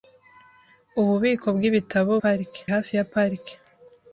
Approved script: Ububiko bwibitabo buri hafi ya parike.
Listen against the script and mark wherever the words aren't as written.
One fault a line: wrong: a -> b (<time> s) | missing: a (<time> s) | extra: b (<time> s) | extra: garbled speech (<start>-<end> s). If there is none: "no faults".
wrong: buri -> parike (2.2 s)